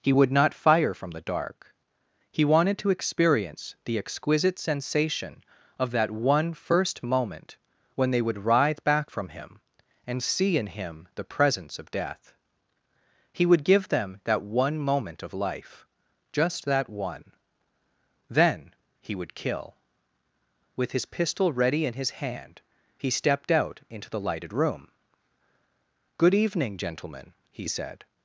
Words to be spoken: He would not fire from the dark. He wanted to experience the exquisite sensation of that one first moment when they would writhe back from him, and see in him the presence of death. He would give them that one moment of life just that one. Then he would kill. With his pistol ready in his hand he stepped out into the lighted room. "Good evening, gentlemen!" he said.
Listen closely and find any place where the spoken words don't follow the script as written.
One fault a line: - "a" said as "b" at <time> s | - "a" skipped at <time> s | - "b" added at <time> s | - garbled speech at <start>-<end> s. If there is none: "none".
none